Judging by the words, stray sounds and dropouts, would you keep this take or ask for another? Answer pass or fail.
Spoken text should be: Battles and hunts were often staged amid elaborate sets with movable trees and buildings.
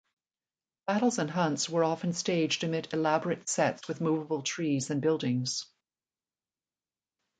pass